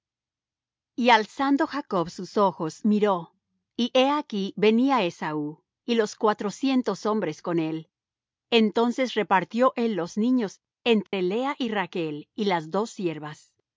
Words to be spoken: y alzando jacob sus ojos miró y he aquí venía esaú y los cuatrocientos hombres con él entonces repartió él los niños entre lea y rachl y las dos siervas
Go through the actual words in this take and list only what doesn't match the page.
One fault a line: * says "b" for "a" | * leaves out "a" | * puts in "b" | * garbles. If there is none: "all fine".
all fine